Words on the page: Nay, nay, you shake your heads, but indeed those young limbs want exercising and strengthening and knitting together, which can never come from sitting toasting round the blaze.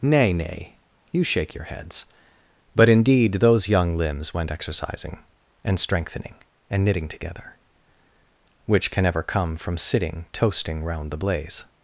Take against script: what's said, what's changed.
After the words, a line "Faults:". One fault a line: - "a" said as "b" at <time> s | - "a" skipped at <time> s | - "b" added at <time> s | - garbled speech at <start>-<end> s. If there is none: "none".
Nay, nay, you shake your heads, but indeed those young limbs went exercising and strengthening and knitting together, which can ever come from sitting toasting round the blaze.
Faults:
- "want" said as "went" at 4.3 s
- "never" said as "ever" at 9.0 s